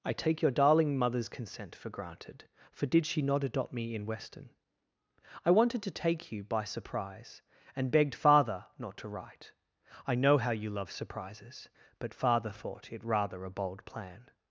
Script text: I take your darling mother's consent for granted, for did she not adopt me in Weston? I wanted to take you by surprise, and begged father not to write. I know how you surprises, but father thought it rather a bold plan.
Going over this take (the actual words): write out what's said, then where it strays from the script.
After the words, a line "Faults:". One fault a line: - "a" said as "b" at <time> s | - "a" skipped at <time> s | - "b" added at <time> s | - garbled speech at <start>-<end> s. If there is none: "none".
I take your darling mother's consent for granted, for did she not adopt me in Weston? I wanted to take you by surprise, and begged father not to write. I know how you love surprises, but father thought it rather a bold plan.
Faults:
- "love" added at 10.7 s